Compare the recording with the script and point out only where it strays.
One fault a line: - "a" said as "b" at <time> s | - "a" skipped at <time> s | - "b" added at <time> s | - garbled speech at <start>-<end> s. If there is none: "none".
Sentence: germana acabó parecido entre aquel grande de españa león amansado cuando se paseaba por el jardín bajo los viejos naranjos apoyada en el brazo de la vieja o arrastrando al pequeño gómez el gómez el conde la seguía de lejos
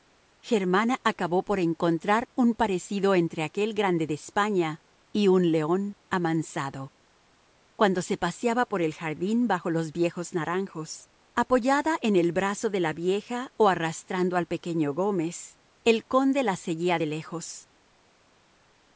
- "por encontrar un" added at 1.4 s
- "y un" added at 5.1 s
- "gómez el" skipped at 16.1 s